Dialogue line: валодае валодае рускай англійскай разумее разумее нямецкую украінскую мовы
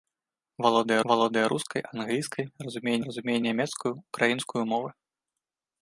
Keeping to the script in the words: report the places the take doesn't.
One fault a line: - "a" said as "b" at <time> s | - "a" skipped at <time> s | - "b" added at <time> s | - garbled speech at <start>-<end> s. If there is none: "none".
none